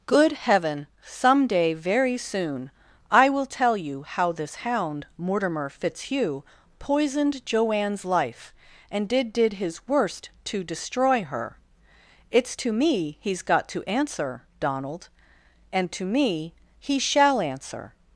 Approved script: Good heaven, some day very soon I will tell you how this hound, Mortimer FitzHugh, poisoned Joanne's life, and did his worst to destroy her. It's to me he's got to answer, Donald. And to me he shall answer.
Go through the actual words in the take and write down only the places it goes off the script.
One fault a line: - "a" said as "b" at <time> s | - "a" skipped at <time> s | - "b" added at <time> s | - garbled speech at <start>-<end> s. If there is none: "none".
- "did" added at 9.3 s